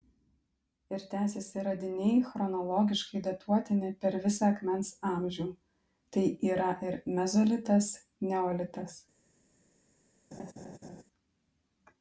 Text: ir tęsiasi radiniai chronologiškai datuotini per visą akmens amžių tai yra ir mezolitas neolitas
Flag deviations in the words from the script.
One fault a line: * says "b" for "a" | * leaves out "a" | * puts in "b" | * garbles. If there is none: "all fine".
all fine